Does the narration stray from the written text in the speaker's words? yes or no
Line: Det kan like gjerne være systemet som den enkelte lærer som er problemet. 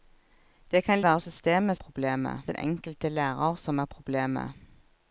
yes